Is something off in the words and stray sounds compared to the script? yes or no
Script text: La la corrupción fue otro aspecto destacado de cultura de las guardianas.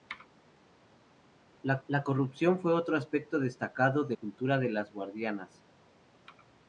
no